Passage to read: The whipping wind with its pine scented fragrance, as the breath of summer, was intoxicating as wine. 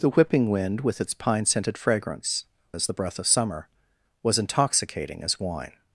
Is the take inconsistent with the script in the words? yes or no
no